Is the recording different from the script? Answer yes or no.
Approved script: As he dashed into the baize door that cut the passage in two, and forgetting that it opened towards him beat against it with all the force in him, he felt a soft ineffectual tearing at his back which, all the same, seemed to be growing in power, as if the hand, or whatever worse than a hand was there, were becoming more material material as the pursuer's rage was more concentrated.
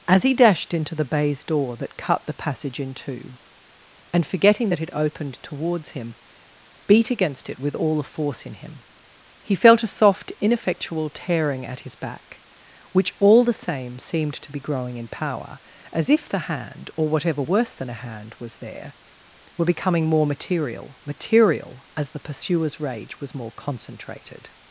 no